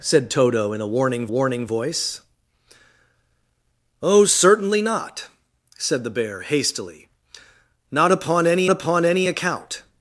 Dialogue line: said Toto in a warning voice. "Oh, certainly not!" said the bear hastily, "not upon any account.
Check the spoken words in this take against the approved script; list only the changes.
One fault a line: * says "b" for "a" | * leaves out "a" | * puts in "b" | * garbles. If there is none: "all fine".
* puts in "warning"
* puts in "upon any"